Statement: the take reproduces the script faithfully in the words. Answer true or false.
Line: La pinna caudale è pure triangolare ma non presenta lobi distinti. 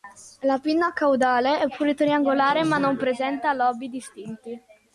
true